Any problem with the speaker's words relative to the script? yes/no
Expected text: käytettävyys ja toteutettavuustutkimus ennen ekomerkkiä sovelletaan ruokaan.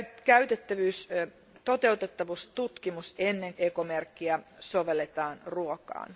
no